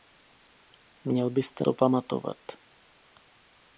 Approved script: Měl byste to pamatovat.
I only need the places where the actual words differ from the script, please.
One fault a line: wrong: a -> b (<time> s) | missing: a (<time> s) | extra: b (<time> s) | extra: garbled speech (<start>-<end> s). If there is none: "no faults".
no faults